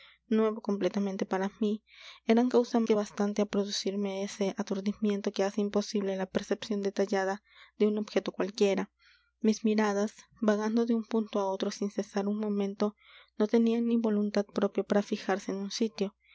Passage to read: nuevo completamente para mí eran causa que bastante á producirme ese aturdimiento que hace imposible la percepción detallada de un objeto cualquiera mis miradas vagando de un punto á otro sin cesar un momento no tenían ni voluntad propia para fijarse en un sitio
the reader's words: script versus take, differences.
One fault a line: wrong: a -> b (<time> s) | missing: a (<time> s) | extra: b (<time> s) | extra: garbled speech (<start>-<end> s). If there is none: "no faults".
no faults